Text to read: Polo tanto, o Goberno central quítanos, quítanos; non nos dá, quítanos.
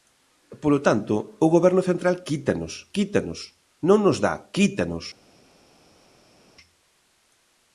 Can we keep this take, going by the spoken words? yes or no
yes